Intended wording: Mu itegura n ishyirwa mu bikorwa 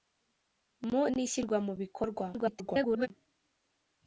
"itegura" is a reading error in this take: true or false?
true